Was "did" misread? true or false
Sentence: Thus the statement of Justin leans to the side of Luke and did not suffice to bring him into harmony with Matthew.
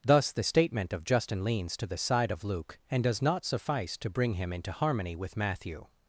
true